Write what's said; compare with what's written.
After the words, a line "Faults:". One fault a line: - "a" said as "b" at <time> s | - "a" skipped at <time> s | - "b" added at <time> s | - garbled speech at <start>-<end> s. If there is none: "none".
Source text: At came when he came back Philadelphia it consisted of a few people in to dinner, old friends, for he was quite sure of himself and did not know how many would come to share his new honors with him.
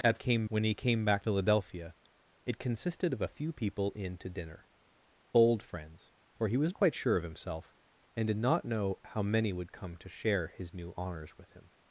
At came when he came back Philadelphia it consisted of a few people in to dinner, old friends, for he was quite sure of himself and did not know how many would come to share his new honors with him.
Faults:
none